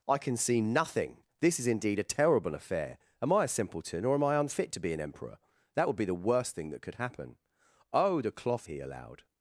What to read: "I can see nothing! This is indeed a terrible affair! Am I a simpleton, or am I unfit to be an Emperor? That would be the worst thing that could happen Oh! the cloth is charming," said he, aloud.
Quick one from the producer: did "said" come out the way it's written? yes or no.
no